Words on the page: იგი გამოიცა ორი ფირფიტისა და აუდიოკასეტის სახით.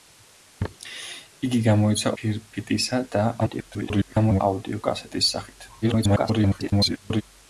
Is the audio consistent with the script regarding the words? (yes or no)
no